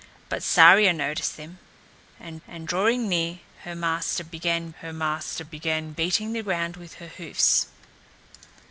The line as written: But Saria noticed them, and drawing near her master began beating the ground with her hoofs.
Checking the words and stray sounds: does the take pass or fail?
fail